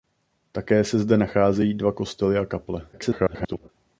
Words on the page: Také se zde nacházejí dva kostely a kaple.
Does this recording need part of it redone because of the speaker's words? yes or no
yes